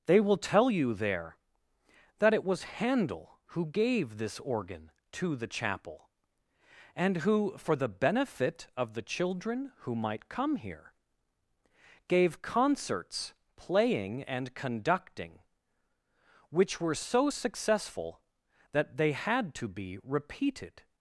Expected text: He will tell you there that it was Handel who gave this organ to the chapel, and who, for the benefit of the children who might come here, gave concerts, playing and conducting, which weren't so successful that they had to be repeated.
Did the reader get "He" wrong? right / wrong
wrong